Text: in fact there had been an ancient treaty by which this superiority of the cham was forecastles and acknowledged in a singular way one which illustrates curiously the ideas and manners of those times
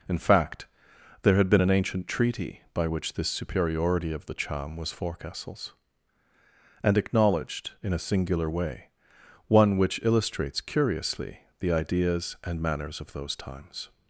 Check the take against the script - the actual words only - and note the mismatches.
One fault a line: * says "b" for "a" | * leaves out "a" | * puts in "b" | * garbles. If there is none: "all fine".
all fine